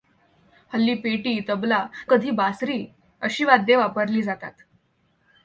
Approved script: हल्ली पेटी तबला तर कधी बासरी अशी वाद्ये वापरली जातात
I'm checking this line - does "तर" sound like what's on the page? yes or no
no